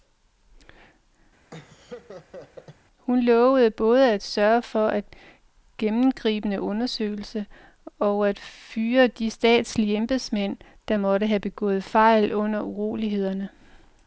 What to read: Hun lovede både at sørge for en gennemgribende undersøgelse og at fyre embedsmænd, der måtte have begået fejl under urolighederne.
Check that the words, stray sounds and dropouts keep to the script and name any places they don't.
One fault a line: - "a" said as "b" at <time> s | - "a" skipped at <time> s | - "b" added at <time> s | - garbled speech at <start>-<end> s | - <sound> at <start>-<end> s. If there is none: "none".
- laugh at 1.5-2.8 s
- "de statslige" added at 9.1 s